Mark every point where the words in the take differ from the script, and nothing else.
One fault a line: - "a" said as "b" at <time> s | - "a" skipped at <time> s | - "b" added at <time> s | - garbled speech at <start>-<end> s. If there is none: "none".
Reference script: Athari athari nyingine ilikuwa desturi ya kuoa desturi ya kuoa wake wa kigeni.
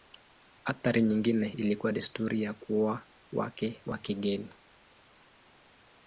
- "athari" skipped at 1.0 s
- "desturi ya kuoa" skipped at 3.1 s